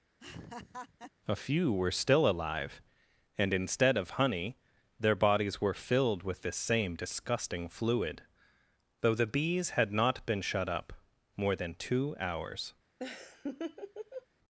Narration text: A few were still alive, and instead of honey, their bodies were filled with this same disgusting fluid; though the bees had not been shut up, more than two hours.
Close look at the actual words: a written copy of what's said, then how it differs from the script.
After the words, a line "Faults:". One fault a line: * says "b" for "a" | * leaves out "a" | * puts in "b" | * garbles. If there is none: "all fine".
A few were still alive, and instead of honey, their bodies were filled with this same disgusting fluid; though the bees had not been shut up, more than two hours.
Faults:
all fine